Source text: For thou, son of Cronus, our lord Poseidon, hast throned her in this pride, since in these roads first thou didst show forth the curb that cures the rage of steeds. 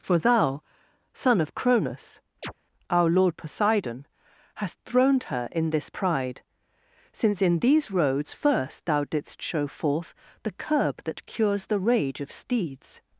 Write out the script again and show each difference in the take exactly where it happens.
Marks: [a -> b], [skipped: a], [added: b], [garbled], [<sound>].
For thou, son of Cronus, [chirp] our lord Poseidon, hast throned her in this pride, since in these roads first thou didst show forth the curb that cures the rage of steeds.